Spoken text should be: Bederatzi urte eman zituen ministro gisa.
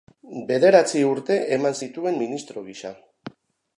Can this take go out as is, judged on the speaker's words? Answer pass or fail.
pass